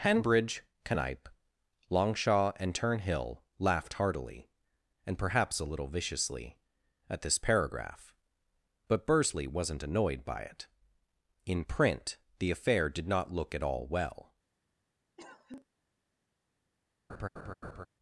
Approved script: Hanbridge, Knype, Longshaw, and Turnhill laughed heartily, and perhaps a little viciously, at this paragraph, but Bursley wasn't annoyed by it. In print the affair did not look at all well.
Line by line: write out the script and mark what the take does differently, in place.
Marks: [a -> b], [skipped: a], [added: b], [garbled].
Hanbridge, Knype, Longshaw, and Turnhill laughed heartily, and perhaps a little viciously, at this paragraph, but Bursley wasn't annoyed by it. In print the affair did not look at all well.